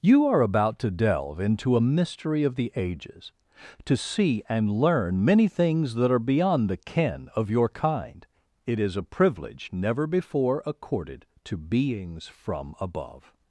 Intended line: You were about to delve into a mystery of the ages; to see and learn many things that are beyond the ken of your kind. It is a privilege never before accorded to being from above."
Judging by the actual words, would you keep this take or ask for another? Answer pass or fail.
fail